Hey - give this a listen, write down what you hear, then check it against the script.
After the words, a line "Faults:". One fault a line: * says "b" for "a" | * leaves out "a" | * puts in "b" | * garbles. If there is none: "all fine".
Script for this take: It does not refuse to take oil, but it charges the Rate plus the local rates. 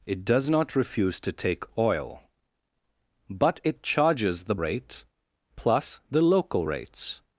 It does not refuse to take oil, but it charges the Rate plus the local rates.
Faults:
all fine